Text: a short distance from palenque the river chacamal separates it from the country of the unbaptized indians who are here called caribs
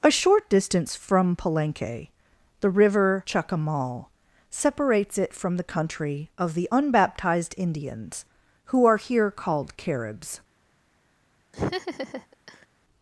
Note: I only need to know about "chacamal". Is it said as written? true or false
true